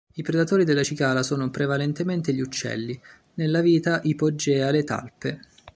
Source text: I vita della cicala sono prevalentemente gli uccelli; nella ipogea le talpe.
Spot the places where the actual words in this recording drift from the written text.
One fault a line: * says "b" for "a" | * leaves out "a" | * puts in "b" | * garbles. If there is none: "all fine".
* says "predatori" for "vita"
* puts in "vita"